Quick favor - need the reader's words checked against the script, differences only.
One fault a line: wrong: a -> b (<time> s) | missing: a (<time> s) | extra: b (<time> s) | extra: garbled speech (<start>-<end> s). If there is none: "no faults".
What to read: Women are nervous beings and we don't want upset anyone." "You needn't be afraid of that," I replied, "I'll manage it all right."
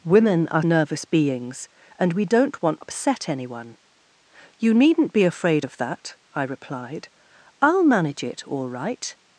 no faults